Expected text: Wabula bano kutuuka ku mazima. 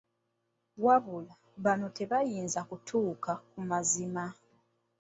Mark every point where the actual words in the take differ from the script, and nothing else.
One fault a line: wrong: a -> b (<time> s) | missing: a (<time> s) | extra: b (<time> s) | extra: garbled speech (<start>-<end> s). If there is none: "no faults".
extra: tebayinza (2.0 s)